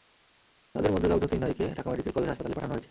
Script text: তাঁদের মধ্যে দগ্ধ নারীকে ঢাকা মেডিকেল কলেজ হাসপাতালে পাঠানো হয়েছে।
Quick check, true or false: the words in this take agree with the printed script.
false